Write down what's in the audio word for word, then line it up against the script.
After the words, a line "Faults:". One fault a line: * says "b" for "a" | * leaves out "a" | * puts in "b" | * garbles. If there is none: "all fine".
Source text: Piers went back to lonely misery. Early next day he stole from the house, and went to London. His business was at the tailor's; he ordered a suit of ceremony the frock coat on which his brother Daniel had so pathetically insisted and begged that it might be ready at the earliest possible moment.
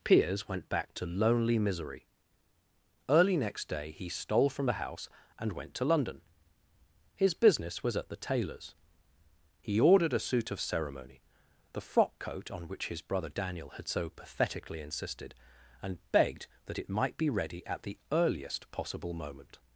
Piers went back to lonely misery. Early next day he stole from the house, and went to London. His business was at the tailor's; he ordered a suit of ceremony the frock coat on which his brother Daniel had so pathetically insisted and begged that it might be ready at the earliest possible moment.
Faults:
all fine